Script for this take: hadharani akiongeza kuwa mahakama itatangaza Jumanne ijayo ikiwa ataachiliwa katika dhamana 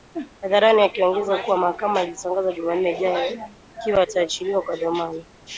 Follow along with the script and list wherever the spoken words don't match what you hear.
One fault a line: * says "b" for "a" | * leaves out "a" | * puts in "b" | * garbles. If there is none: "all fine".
* says "kwa" for "katika"